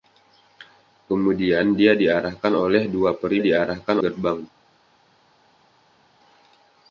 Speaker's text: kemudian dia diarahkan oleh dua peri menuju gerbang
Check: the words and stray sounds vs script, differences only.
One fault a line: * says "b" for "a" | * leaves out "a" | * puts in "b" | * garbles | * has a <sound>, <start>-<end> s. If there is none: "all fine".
* says "diarahkan" for "menuju"